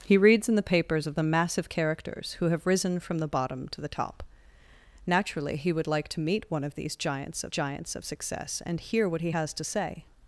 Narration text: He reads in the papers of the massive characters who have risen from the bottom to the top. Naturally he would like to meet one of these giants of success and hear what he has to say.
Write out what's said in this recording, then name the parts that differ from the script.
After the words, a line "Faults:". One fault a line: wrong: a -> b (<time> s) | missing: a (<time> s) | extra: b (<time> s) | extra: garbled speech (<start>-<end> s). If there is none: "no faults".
He reads in the papers of the massive characters who have risen from the bottom to the top. Naturally he would like to meet one of these giants of giants of success and hear what he has to say.
Faults:
extra: giants of (7.5 s)